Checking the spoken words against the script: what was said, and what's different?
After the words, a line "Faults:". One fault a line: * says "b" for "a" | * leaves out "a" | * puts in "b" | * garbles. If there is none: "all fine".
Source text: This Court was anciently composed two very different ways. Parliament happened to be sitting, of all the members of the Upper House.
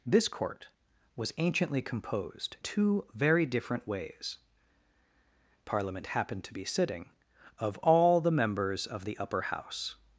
This Court was anciently composed two very different ways. Parliament happened to be sitting, of all the members of the Upper House.
Faults:
all fine